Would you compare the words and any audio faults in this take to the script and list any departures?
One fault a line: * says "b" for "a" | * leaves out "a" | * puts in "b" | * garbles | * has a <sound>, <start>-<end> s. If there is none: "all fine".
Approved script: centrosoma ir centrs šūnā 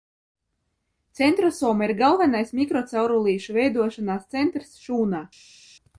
* puts in "galvenais mikrocaurulīšu veidošanās"